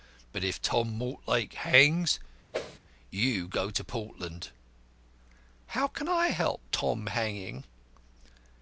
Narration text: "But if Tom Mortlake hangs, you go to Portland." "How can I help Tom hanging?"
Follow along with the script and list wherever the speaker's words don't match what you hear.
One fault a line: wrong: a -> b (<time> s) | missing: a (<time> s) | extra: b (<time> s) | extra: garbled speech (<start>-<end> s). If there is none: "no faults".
no faults